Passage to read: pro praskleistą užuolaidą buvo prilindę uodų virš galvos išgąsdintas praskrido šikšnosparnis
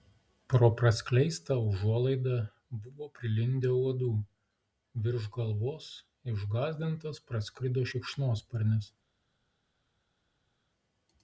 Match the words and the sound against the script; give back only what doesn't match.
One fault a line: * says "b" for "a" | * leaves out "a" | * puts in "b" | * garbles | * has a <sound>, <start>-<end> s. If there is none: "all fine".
all fine